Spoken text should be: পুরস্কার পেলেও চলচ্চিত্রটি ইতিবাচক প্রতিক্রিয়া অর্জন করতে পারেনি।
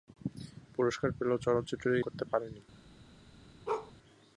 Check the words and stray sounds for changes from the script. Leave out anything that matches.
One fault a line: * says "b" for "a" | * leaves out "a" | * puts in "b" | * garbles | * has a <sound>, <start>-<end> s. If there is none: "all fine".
* leaves out "ইতিবাচক প্রতিক্রিয়া অর্জন"
* has a bark, 3.7-3.9 s